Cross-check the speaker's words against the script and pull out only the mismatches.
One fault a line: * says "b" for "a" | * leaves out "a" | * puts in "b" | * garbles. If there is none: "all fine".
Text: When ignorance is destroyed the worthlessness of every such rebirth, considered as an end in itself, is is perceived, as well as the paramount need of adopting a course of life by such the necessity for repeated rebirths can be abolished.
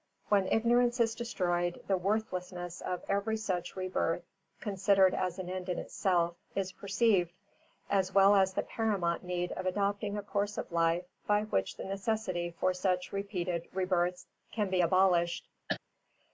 * leaves out "is"
* says "which" for "such"
* puts in "such"